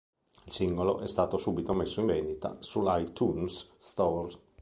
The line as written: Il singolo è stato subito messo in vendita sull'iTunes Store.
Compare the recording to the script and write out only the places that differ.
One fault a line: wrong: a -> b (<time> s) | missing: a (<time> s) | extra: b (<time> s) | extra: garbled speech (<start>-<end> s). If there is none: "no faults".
no faults